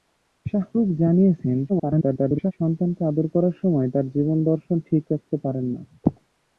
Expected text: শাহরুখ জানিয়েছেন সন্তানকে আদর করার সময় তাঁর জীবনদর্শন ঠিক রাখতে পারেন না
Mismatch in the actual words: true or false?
true